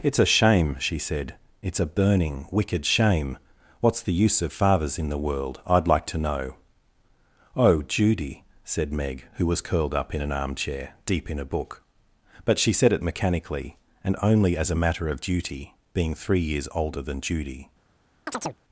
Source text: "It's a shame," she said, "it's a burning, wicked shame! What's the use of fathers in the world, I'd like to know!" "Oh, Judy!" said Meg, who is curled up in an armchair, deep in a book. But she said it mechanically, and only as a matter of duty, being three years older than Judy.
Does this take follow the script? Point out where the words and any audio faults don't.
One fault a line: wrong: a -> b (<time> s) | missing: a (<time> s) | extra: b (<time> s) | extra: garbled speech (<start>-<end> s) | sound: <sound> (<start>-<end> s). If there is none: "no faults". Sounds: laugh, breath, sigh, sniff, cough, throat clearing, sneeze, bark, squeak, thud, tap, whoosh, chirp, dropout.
wrong: is -> was (9.4 s)
sound: chirp (18.3-18.6 s)